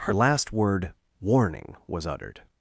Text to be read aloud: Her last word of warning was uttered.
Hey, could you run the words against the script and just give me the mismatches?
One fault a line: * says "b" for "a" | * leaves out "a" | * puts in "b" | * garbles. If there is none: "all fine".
* leaves out "of"